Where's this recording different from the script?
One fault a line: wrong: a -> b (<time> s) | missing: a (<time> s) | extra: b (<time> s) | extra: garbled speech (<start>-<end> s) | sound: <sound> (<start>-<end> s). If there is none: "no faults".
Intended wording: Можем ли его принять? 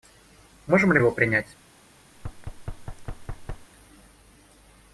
sound: thud (2.1-3.7 s)